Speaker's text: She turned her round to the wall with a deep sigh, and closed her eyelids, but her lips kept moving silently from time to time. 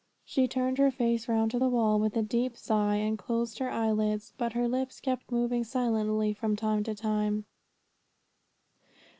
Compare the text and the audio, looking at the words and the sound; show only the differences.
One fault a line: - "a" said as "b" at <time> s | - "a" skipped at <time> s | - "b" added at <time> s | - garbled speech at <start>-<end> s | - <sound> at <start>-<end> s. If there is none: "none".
- "face" added at 0.9 s